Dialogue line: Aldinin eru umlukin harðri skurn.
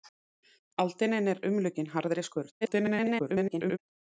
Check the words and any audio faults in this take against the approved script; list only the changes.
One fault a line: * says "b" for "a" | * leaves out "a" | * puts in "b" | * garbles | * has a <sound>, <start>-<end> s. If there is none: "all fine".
* garbles